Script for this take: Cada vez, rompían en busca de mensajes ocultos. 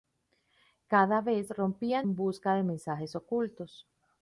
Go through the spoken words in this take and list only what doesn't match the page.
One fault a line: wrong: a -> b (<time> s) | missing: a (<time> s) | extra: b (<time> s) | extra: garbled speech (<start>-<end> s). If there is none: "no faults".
no faults